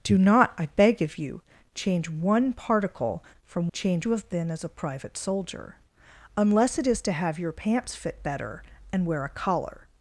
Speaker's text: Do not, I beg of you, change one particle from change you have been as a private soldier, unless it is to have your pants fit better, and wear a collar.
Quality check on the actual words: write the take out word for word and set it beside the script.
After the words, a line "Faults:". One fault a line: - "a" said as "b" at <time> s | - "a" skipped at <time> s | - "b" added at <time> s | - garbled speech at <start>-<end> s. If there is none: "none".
Do not, I beg of you, change one particle from change you have been as a private soldier, unless it is to have your pants fit better, and wear a collar.
Faults:
none